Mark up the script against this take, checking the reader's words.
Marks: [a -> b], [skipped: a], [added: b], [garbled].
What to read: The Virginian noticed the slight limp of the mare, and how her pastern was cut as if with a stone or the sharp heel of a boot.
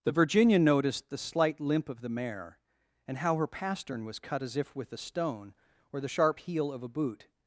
The Virginian noticed the slight limp of the mare, and how her pastern was cut as if with a stone or the sharp heel of a boot.